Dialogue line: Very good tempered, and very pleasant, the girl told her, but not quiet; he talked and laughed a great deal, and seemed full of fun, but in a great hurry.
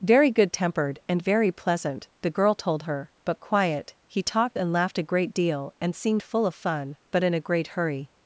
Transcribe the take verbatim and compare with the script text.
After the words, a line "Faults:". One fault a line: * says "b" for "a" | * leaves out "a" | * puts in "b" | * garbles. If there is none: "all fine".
Very good tempered, and very pleasant, the girl told her, but quiet; he talked and laughed a great deal, and seemed full of fun, but in a great hurry.
Faults:
* leaves out "not"